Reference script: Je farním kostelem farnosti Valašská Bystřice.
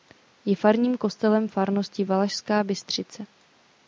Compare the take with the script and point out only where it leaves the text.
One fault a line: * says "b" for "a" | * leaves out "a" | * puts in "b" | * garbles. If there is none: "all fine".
all fine